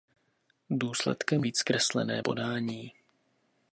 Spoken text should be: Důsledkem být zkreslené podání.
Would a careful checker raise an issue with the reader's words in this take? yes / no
no